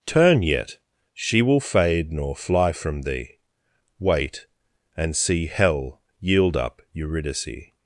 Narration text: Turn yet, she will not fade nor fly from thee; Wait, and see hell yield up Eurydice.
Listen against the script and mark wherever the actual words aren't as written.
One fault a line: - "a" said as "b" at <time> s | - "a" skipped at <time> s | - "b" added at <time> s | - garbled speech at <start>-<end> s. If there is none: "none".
- "not" skipped at 1.6 s